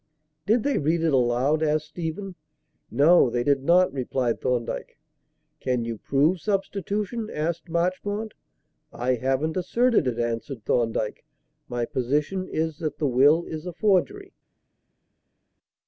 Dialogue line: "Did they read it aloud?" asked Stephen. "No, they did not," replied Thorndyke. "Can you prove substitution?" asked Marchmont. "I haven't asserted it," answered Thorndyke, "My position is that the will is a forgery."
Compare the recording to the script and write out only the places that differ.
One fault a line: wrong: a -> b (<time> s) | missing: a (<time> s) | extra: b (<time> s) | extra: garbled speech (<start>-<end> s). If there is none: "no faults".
no faults